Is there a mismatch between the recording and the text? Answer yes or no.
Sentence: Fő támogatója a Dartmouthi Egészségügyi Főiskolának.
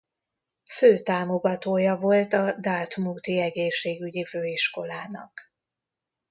yes